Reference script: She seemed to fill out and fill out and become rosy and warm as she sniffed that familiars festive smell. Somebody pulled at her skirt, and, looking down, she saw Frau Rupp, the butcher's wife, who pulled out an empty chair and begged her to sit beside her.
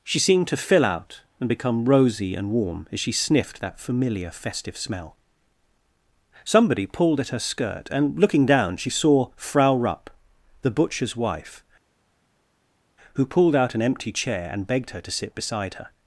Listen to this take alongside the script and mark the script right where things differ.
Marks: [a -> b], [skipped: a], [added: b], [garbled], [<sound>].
She seemed to fill out and [skipped: fill out and] become rosy and warm as she sniffed that [familiars -> familiar] festive smell. Somebody pulled at her skirt, and, looking down, she saw Frau Rupp, the butcher's wife, who pulled out an empty chair and begged her to sit beside her.